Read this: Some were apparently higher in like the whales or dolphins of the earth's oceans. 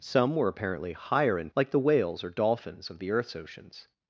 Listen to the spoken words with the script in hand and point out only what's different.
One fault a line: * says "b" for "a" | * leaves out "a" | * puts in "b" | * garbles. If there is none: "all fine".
all fine